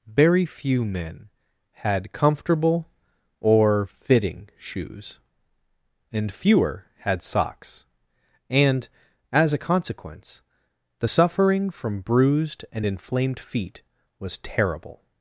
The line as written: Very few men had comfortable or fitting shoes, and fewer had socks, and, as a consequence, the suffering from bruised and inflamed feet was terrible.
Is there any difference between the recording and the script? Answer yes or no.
no